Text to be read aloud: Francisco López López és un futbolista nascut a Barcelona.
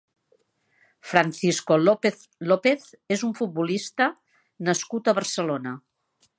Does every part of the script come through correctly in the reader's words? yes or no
yes